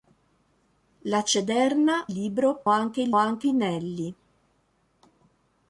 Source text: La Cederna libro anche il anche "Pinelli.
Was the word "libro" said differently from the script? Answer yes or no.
no